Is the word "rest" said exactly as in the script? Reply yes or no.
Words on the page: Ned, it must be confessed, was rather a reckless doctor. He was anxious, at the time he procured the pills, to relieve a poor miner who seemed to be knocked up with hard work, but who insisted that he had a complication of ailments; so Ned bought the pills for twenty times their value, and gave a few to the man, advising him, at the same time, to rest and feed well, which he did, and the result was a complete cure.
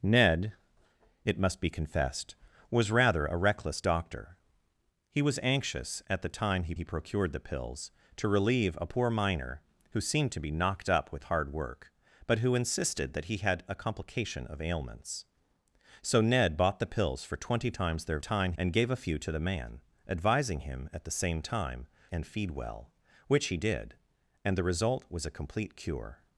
no